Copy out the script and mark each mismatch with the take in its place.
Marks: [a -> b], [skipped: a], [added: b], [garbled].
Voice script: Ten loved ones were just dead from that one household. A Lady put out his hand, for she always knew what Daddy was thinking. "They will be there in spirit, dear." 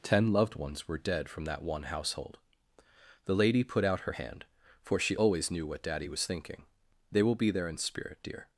Ten loved ones were [skipped: just] dead from that one household. [A -> The] Lady put out [his -> her] hand, for she always knew what Daddy was thinking. "They will be there in spirit, dear."